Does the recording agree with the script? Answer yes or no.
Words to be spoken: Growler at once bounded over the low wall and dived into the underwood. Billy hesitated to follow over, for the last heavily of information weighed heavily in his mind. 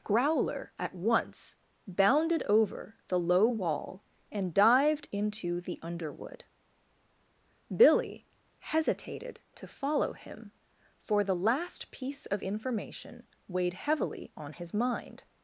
no